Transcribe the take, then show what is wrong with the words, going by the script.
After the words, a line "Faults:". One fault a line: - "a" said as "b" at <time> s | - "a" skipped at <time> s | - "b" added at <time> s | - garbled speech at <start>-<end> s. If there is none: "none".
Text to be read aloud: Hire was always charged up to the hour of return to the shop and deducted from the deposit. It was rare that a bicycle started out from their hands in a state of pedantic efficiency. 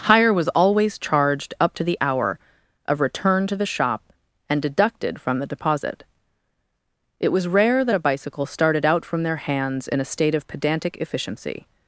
Hire was always charged up to the hour of return to the shop and deducted from the deposit. It was rare that a bicycle started out from their hands in a state of pedantic efficiency.
Faults:
none